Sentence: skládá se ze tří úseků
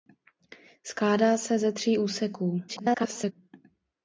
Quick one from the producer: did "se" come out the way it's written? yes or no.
yes